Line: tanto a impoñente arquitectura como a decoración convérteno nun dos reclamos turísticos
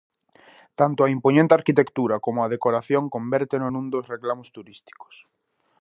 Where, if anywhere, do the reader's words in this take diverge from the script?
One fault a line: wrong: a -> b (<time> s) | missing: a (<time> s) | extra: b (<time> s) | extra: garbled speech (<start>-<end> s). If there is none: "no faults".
no faults